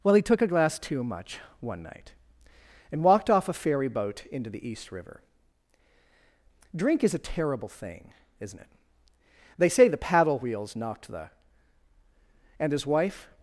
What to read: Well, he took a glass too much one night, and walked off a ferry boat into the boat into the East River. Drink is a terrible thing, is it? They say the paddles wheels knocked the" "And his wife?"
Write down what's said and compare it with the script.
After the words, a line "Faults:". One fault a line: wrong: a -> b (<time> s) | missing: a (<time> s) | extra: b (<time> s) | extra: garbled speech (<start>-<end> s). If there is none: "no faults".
Well, he took a glass too much one night, and walked off a ferry boat into the East River. Drink is a terrible thing, isn't it? They say the paddle wheels knocked the" "And his wife?"
Faults:
missing: boat into the (4.7 s)
wrong: is -> isn't (8.4 s)
wrong: paddles -> paddle (10.0 s)